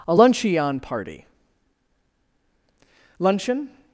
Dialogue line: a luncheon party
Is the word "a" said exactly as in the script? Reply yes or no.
yes